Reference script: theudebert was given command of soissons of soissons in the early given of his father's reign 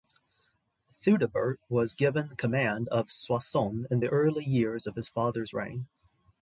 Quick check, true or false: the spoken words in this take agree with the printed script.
false